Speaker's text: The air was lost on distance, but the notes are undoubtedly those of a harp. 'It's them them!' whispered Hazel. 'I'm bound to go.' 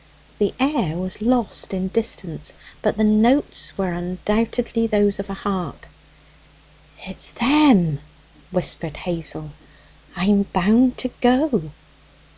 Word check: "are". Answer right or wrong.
wrong